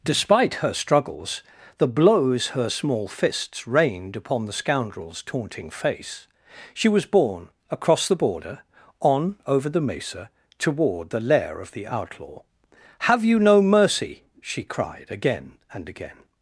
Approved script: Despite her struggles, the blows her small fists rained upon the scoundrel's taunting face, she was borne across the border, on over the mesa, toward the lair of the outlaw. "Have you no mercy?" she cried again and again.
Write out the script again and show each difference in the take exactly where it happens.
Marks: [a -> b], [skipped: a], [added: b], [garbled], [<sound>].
Despite her struggles, the blows her small fists rained upon the scoundrel's taunting face, she was borne across the border, on over the mesa, toward the lair of the outlaw. "Have you no mercy?" she cried again and again.